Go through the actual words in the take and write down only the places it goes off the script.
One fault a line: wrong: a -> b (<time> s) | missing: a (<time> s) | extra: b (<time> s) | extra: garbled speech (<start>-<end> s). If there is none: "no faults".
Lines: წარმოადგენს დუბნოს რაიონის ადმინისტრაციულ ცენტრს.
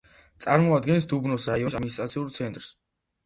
no faults